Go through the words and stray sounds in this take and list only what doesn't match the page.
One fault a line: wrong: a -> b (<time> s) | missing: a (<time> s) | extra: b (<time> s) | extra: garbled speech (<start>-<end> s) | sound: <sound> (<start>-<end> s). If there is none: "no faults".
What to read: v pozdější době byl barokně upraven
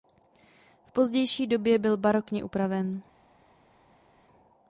no faults